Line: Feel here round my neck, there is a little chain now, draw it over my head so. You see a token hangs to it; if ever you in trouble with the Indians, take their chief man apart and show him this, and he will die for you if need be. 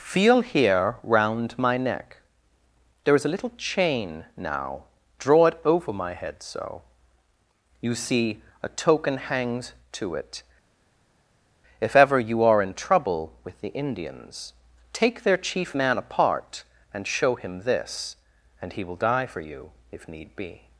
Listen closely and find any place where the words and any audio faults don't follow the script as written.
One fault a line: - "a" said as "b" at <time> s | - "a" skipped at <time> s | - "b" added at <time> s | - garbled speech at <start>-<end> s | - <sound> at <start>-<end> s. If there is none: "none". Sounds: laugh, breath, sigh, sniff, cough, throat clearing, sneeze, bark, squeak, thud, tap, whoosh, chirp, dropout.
- "are" added at 12.4 s